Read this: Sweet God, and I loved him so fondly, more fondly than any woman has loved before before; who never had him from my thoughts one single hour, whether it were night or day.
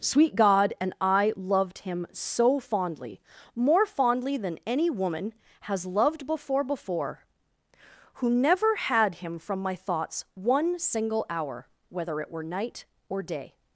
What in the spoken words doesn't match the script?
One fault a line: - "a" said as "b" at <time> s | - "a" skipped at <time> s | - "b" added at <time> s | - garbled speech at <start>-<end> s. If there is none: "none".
none